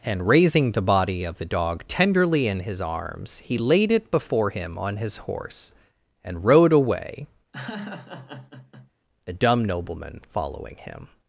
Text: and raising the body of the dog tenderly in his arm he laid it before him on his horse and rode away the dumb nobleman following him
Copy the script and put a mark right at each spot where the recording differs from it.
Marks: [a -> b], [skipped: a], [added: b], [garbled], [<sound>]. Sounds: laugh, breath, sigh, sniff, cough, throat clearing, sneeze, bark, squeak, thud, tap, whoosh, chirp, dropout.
and raising the body of the dog tenderly in his [arm -> arms] he laid it before him on his horse and rode away [laugh] the dumb nobleman following him